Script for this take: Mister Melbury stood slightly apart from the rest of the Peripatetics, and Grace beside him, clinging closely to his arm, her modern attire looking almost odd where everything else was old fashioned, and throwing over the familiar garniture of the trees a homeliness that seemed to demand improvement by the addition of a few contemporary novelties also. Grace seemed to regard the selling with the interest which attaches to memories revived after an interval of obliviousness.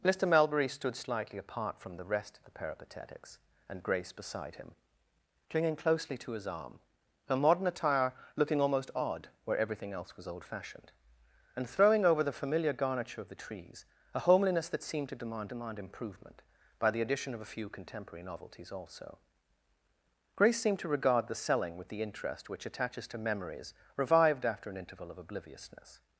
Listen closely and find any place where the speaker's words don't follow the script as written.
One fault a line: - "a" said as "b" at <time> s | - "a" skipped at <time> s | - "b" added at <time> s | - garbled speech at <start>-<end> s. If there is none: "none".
- "demand" added at 15.4 s